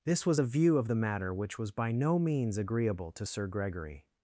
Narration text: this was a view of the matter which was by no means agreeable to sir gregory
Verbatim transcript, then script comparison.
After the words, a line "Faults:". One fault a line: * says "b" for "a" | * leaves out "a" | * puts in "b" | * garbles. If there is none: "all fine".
this was a view of the matter which was by no means agreeable to sir gregory
Faults:
all fine